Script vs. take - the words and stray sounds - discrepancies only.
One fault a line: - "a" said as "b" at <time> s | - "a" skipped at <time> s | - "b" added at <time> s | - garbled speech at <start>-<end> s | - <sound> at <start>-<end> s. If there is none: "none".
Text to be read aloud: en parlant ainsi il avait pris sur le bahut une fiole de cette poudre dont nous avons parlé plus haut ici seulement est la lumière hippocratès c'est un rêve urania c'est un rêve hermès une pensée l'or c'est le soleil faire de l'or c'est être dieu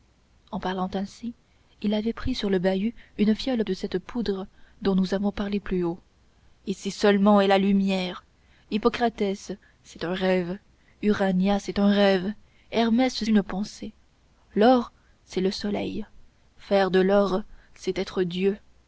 none